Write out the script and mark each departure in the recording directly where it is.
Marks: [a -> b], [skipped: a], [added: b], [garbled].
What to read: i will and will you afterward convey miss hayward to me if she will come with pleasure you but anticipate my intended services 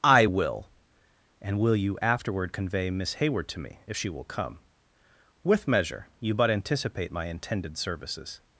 i will and will you afterward convey miss hayward to me if she will come with [pleasure -> measure] you but anticipate my intended services